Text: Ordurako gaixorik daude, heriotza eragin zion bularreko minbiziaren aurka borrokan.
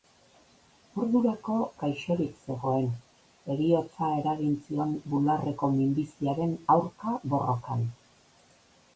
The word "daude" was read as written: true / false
false